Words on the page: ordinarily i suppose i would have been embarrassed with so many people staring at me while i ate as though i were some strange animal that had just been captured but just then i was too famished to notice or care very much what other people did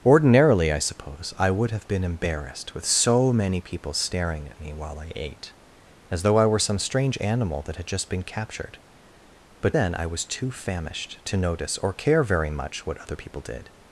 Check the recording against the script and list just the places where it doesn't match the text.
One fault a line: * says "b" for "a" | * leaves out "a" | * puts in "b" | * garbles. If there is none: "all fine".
* leaves out "just"